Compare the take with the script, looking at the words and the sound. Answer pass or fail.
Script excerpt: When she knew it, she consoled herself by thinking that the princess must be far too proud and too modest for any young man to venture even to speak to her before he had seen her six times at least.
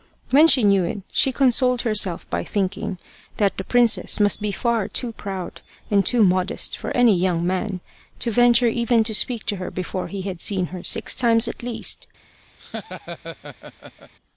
fail